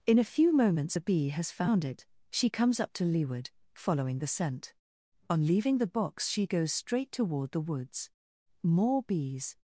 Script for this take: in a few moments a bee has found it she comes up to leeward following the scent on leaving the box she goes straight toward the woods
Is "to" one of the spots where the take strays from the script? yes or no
no